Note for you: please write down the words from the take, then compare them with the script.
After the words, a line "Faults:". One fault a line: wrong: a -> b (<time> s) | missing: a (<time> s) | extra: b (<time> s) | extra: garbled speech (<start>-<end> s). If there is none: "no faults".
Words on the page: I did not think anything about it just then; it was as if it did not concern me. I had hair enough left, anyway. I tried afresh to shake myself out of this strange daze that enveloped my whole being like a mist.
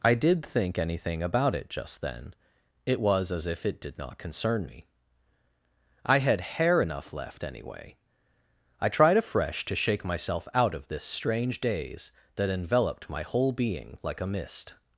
I did think anything about it just then; it was as if it did not concern me. I had hair enough left, anyway. I tried afresh to shake myself out of this strange daze that enveloped my whole being like a mist.
Faults:
missing: not (0.5 s)